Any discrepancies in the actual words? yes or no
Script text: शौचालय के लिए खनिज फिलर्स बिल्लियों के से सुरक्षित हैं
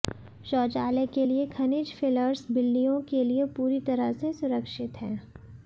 yes